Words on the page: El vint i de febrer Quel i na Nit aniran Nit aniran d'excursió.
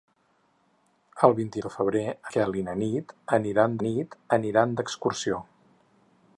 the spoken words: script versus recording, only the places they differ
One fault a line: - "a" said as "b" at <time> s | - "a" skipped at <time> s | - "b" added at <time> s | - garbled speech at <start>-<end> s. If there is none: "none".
none